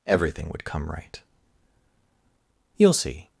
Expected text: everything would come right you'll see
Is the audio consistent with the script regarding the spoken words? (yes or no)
yes